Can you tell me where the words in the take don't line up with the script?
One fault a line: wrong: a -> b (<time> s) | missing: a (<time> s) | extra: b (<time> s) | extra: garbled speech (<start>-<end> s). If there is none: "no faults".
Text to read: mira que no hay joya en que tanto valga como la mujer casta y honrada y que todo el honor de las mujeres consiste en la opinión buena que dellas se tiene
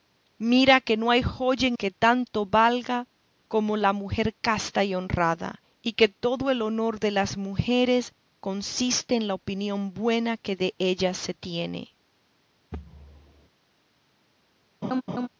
no faults